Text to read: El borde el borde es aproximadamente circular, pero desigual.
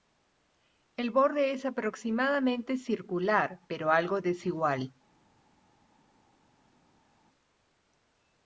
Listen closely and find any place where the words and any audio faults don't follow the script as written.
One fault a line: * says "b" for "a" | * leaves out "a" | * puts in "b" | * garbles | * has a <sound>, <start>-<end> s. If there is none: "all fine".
* leaves out "el borde"
* puts in "algo"